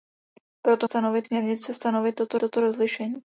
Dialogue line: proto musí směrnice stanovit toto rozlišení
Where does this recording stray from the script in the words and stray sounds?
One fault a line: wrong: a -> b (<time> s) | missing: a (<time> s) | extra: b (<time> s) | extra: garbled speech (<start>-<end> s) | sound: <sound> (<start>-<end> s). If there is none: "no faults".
wrong: musí -> stanovit (0.8 s)
extra: toto (2.4 s)